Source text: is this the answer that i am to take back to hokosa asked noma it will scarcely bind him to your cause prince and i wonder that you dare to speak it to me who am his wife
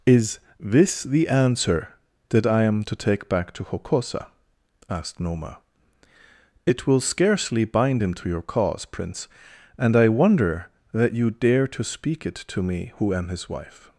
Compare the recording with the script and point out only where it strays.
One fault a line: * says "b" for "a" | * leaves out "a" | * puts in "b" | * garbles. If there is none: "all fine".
all fine